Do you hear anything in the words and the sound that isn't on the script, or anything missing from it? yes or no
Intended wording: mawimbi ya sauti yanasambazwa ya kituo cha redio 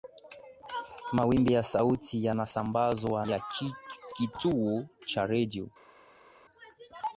no